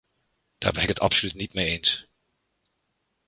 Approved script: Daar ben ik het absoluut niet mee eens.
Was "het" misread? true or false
false